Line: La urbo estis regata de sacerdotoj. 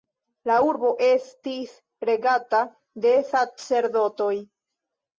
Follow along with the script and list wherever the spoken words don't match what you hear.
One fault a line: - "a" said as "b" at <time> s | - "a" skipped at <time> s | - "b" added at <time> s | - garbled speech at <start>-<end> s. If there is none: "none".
none